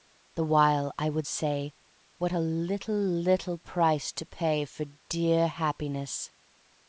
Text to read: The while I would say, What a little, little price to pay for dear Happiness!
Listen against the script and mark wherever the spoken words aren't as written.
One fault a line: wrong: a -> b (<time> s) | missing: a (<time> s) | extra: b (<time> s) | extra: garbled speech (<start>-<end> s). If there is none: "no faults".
no faults